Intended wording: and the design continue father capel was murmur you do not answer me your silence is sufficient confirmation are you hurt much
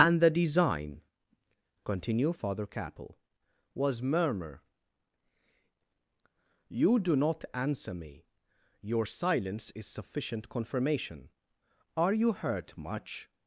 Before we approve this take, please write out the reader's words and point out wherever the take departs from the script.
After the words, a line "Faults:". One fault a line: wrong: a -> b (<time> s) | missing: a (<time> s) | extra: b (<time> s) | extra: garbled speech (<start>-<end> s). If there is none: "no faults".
and the design continue father capel was murmur you do not answer me your silence is sufficient confirmation are you hurt much
Faults:
no faults